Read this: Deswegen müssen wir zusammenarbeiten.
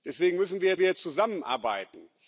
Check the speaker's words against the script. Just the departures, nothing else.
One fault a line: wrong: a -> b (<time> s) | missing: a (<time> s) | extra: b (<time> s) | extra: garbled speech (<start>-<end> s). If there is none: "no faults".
extra: wir (0.8 s)